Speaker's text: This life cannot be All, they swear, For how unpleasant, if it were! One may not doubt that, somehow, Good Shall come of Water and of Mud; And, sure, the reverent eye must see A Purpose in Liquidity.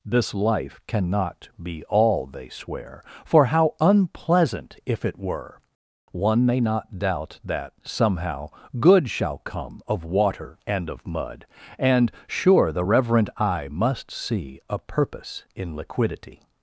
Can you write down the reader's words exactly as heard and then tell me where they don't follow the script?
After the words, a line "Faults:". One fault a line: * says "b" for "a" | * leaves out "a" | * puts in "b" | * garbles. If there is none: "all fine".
This life cannot be All, they swear, For how unpleasant, if it were! One may not doubt that, somehow, Good Shall come of Water and of Mud; And, sure, the reverent eye must see A Purpose in Liquidity.
Faults:
all fine